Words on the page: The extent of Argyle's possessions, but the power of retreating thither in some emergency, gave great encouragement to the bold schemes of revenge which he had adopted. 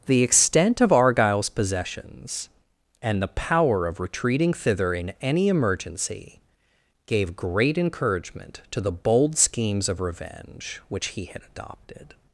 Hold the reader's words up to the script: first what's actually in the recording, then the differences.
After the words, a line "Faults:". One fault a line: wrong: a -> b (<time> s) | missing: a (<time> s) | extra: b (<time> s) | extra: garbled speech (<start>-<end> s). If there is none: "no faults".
The extent of Argyle's possessions, and the power of retreating thither in any emergency, gave great encouragement to the bold schemes of revenge which he had adopted.
Faults:
wrong: but -> and (3.0 s)
wrong: some -> any (5.2 s)